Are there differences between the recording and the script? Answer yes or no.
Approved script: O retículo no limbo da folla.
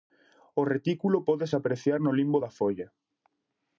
yes